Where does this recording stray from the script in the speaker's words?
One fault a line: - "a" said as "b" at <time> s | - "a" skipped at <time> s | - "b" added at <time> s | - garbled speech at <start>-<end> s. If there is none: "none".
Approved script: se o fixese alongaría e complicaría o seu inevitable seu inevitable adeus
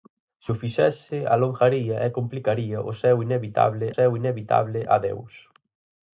none